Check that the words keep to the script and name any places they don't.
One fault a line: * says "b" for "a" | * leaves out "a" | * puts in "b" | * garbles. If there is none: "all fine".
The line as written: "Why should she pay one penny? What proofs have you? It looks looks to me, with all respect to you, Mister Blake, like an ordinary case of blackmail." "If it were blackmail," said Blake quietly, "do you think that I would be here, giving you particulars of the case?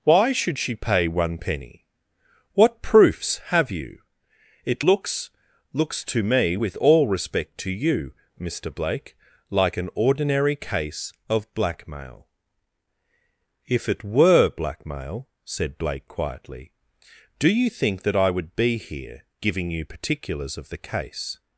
all fine